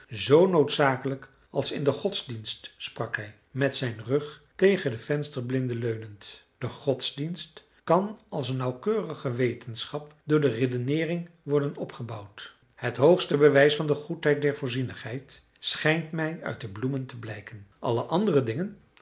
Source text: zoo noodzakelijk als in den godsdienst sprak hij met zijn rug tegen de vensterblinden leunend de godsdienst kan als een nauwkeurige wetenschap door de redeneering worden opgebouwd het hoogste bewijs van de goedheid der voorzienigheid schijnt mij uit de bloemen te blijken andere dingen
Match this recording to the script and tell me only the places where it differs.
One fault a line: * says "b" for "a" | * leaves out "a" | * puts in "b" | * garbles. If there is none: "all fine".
* puts in "alle"